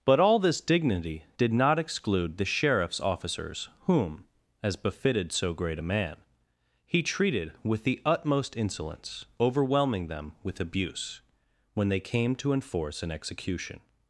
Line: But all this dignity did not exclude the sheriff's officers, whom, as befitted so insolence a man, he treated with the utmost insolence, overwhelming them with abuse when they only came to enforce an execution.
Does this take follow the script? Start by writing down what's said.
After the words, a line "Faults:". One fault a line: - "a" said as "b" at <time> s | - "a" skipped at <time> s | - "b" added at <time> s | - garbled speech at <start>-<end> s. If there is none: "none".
But all this dignity did not exclude the sheriff's officers, whom, as befitted so great a man, he treated with the utmost insolence, overwhelming them with abuse when they came to enforce an execution.
Faults:
- "insolence" said as "great" at 5.5 s
- "only" skipped at 12.0 s